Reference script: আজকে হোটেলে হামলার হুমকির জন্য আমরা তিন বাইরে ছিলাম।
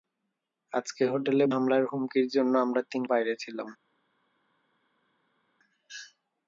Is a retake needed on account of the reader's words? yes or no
no